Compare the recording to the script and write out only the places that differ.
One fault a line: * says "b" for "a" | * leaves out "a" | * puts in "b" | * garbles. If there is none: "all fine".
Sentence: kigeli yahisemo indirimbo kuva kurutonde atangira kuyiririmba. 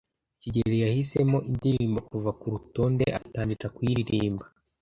all fine